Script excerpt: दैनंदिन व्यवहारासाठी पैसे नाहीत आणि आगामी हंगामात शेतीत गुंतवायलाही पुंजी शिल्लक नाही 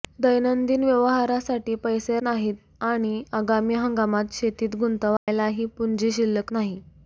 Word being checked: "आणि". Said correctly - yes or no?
yes